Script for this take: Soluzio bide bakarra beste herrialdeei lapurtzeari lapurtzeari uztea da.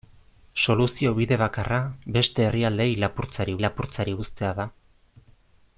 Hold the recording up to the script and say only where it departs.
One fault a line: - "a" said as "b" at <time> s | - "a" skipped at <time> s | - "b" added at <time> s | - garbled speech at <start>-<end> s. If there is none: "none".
none